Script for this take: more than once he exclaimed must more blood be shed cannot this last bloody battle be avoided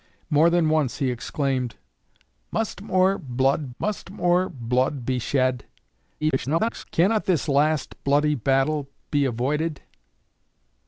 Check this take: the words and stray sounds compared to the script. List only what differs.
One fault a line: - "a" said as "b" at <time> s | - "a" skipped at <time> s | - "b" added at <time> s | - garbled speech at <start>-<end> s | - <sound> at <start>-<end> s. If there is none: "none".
- "must more blood" added at 3.8 s
- garbled speech at 6.2-6.8 s